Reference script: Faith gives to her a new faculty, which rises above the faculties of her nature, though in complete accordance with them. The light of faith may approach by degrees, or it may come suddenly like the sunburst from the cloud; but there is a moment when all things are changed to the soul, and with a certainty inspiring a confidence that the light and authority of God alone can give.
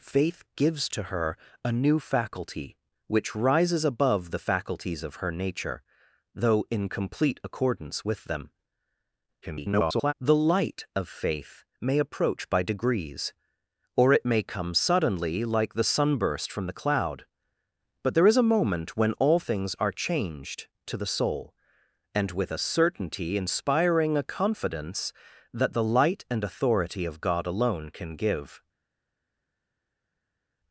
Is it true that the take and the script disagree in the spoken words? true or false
true